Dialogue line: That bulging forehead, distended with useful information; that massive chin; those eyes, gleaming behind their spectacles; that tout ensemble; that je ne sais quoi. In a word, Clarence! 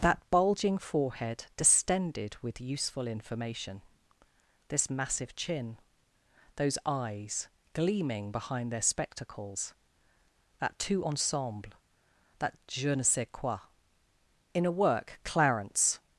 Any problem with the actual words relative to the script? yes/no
yes